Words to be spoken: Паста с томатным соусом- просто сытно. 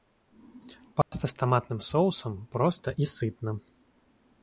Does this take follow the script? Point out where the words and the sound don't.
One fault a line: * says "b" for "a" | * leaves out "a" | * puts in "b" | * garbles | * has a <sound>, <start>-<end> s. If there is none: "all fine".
* has a dropout, 1.0-1.1 s
* puts in "и"